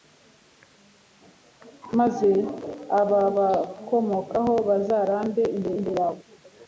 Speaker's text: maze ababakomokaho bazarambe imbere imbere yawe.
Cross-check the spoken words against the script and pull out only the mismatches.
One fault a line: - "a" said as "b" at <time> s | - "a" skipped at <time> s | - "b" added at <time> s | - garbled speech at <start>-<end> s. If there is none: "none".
none